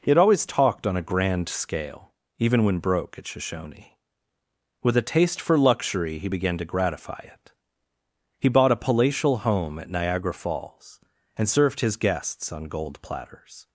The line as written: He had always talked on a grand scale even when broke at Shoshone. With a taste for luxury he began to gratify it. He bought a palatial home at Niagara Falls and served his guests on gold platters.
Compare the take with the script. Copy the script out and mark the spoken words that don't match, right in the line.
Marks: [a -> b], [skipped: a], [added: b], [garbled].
He had always talked on a grand scale even when broke at Shoshone. With a taste for luxury he began to gratify it. He bought a palatial home at Niagara Falls and served his guests on gold platters.